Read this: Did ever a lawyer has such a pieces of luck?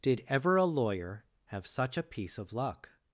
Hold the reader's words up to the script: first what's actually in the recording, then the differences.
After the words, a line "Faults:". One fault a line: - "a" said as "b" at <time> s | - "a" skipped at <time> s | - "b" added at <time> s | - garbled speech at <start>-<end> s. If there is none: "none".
Did ever a lawyer have such a piece of luck?
Faults:
- "has" said as "have" at 1.5 s
- "pieces" said as "piece" at 2.0 s